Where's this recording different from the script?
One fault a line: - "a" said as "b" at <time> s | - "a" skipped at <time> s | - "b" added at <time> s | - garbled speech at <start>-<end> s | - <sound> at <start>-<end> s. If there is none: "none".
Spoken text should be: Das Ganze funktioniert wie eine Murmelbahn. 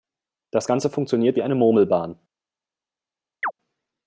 - chirp at 3.4-3.5 s